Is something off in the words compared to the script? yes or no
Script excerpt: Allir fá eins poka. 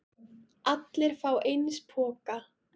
no